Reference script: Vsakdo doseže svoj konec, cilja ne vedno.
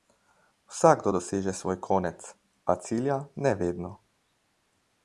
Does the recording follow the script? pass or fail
fail